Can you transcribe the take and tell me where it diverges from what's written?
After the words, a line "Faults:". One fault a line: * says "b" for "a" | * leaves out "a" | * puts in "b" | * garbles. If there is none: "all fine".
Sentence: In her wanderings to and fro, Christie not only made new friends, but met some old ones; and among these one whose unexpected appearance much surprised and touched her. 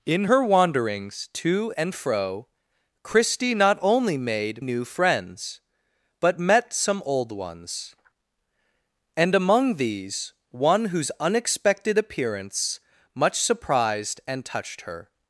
In her wanderings to and fro, Christie not only made new friends, but met some old ones; and among these one whose unexpected appearance much surprised and touched her.
Faults:
all fine